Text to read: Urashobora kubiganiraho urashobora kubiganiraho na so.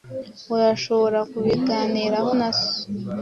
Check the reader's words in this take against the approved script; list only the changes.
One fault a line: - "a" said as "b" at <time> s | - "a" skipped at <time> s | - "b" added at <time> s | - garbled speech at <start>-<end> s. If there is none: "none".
- "urashobora kubiganiraho" skipped at 2.3 s